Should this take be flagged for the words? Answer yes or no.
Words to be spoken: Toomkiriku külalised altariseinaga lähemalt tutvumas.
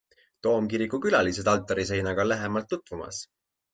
no